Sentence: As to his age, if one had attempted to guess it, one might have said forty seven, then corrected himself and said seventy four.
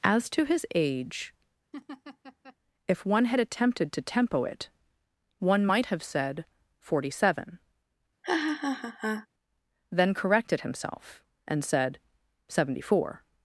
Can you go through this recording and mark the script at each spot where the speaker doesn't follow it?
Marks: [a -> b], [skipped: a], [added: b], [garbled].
As to his age, if one had attempted to [guess -> tempo] it, one might have said forty seven, then corrected himself and said seventy four.